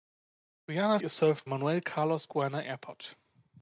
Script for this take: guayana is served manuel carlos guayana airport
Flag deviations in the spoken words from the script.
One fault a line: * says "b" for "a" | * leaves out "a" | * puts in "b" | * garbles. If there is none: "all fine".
all fine